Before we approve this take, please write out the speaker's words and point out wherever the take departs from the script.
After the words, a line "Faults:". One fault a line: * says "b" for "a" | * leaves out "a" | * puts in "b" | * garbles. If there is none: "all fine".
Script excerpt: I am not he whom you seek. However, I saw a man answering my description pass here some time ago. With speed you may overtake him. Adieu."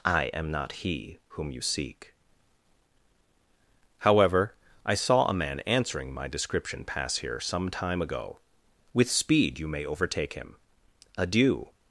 I am not he whom you seek. However, I saw a man answering my description pass here some time ago. With speed you may overtake him. Adieu."
Faults:
all fine